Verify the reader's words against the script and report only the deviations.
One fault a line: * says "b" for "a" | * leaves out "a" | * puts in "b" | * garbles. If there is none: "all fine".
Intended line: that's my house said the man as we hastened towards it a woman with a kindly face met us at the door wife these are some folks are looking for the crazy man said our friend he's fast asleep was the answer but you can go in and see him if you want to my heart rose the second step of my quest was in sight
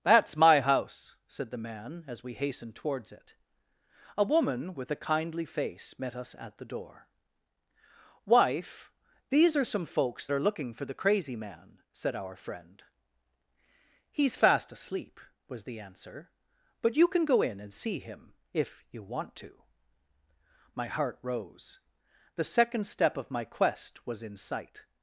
all fine